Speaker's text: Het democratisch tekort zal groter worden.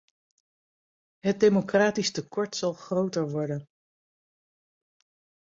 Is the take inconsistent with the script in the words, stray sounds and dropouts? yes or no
no